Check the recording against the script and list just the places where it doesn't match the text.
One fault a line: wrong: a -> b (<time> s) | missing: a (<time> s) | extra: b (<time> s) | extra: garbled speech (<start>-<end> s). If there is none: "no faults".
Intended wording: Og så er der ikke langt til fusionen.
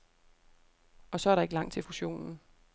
no faults